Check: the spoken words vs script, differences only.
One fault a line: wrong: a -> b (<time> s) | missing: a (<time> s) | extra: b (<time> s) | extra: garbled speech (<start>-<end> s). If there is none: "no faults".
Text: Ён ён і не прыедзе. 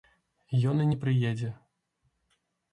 missing: ён (0.8 s)